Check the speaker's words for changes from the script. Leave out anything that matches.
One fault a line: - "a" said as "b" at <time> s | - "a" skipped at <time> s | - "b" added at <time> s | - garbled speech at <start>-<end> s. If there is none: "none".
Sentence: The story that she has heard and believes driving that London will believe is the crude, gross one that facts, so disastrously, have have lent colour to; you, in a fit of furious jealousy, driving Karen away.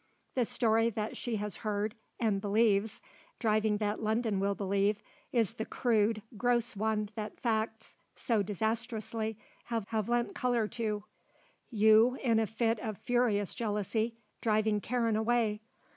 none